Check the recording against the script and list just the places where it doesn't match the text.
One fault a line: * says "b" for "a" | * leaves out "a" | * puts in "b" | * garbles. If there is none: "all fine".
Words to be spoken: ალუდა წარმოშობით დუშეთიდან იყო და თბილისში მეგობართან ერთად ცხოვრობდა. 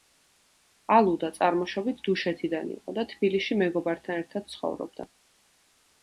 all fine